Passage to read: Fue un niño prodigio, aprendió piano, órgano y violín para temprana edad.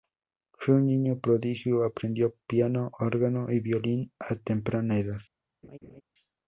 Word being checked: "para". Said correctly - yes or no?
no